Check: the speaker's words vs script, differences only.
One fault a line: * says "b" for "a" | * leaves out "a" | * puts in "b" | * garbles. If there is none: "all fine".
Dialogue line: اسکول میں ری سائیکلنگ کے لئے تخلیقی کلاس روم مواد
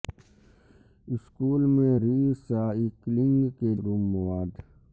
* leaves out "لئے تخلیقی کلاس"